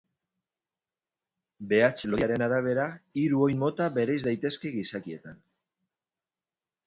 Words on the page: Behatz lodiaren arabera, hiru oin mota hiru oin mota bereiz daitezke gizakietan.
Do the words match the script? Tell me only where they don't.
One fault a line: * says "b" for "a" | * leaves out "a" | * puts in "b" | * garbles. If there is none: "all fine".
* leaves out "hiru oin mota"